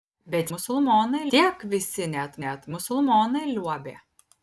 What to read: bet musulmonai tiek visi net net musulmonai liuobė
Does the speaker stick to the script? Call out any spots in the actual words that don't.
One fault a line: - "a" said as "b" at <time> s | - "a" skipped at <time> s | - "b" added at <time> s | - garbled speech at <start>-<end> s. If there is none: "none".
none